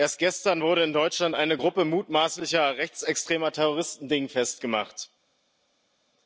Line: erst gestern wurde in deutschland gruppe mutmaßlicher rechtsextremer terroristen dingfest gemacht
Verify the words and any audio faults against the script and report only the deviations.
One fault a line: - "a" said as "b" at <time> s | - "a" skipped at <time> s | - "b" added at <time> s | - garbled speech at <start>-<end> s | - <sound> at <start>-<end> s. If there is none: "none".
- "eine" added at 1.3 s